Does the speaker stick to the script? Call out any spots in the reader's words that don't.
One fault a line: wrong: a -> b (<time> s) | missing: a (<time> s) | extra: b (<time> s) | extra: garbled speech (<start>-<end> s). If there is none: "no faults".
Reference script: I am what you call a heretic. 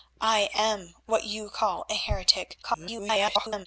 extra: garbled speech (2.6-3.7 s)